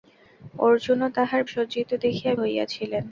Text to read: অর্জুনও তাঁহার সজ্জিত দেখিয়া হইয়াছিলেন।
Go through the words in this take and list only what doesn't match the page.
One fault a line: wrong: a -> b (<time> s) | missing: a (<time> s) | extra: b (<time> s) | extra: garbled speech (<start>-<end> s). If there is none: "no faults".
no faults